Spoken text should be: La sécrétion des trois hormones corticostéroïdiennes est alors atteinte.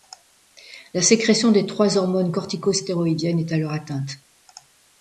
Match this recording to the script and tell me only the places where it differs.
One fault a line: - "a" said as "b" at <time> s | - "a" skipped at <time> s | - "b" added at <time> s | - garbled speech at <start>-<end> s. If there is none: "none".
none